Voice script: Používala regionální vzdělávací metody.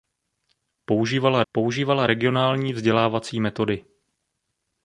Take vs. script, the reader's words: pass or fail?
fail